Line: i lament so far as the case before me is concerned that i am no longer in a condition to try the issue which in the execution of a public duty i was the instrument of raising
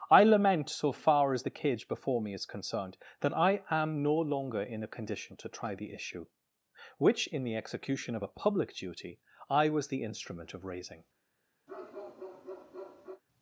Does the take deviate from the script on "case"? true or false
true